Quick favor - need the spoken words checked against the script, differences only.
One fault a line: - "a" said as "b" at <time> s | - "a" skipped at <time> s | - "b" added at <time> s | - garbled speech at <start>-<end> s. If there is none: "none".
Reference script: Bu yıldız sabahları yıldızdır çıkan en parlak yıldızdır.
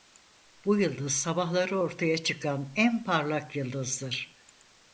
- "yıldızdır" said as "ortaya" at 1.8 s